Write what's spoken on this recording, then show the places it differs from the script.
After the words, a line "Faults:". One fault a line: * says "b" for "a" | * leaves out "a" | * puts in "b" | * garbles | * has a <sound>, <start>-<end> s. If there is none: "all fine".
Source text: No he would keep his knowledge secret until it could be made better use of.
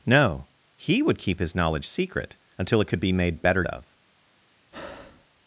No he would keep his knowledge secret until it could be made better of.
Faults:
* leaves out "use"
* has a breath, 4.7-5.3 s